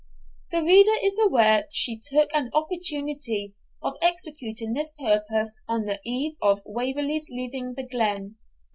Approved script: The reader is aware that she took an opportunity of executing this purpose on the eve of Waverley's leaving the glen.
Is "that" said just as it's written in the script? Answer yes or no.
no